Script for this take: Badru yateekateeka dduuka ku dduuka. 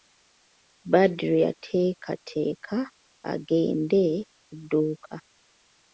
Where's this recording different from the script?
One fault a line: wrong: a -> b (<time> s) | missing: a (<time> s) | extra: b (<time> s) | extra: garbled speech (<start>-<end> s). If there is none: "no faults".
wrong: dduuka -> agende (3.3 s)